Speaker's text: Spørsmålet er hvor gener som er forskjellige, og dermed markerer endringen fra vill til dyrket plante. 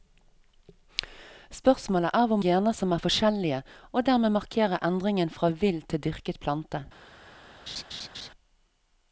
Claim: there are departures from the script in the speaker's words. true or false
false